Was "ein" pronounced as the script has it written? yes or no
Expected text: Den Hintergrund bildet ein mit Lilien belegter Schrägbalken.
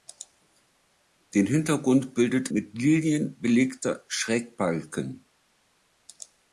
no